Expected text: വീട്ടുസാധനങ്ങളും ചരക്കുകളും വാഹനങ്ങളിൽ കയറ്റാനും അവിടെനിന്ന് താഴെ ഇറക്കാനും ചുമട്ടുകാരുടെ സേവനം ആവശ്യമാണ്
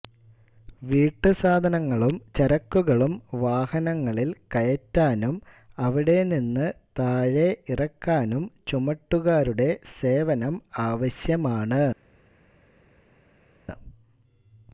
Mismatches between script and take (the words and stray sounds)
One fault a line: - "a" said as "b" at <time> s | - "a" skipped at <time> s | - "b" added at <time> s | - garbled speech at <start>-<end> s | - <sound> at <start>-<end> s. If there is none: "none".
none